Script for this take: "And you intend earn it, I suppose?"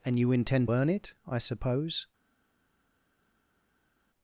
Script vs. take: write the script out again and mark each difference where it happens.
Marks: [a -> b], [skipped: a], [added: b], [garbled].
"And you intend earn it, I suppose?"